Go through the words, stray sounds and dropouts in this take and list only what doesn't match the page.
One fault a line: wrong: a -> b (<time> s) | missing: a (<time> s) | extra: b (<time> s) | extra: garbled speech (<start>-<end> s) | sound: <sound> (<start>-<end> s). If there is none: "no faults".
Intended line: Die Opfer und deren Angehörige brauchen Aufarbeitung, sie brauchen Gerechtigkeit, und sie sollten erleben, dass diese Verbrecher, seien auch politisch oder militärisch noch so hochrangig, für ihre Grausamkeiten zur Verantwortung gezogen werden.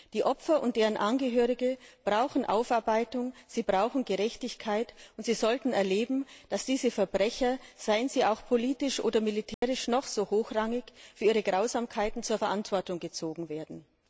extra: sie (8.1 s)
sound: dropout (9.5-9.6 s)